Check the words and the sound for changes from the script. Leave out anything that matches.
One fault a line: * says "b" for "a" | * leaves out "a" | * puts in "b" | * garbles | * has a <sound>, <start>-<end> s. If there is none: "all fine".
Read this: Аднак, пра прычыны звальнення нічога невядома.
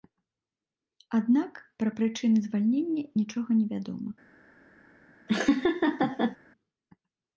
* has a laugh, 5.3-6.4 s